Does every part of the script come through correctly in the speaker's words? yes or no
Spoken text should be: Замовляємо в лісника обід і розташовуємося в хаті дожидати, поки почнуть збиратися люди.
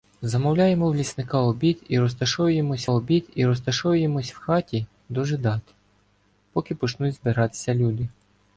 no